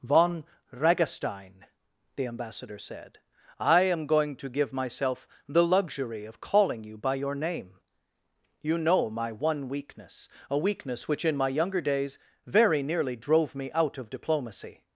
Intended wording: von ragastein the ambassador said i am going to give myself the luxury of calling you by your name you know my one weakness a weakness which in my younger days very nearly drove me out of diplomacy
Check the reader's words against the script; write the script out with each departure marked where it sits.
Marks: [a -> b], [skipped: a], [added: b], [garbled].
von ragastein the ambassador said i am going to give myself the luxury of calling you by your name you know my one weakness a weakness which in my younger days very nearly drove me out of diplomacy